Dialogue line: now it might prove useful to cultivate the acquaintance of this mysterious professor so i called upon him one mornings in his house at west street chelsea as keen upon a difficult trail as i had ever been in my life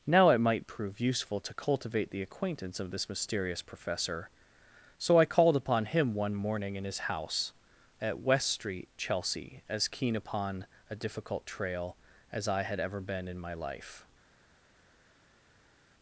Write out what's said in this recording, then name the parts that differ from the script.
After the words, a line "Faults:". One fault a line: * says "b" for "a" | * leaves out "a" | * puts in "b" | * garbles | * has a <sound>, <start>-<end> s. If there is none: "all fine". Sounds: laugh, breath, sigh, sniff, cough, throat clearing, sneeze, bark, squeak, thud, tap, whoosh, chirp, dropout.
now it might prove useful to cultivate the acquaintance of this mysterious professor so i called upon him one morning in his house at west street chelsea as keen upon a difficult trail as i had ever been in my life
Faults:
* says "morning" for "mornings"